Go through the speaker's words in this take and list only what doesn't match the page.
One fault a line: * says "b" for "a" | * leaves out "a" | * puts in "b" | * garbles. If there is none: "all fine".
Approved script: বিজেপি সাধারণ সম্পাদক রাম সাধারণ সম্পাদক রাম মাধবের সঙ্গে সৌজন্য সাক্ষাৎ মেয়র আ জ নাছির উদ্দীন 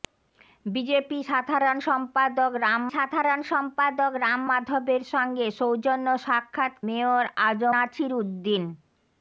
all fine